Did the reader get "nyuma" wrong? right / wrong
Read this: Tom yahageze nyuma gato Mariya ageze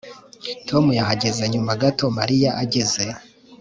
right